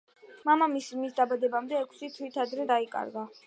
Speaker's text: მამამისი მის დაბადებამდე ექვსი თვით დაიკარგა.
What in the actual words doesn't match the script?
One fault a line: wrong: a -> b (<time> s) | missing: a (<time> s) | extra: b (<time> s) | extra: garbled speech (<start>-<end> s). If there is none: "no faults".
extra: ადრე (2.5 s)